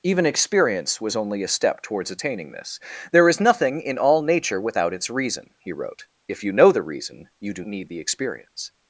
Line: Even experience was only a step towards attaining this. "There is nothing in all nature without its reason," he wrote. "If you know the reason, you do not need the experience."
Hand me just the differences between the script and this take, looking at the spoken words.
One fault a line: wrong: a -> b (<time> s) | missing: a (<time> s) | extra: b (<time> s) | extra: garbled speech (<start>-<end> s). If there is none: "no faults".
missing: not (7.6 s)